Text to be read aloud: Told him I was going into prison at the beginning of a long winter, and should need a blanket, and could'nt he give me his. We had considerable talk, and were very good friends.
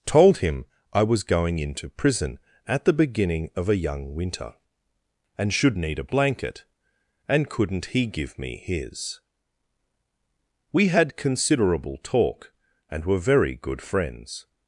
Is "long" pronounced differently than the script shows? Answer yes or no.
yes